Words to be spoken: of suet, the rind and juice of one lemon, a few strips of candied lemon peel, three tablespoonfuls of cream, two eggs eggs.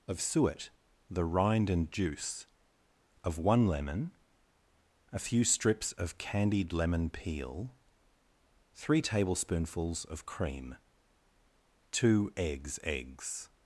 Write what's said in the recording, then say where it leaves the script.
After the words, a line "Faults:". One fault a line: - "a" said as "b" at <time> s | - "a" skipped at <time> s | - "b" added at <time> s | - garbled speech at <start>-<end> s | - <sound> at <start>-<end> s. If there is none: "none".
of suet, the rind and juice of one lemon, a few strips of candied lemon peel, three tablespoonfuls of cream, two eggs eggs.
Faults:
none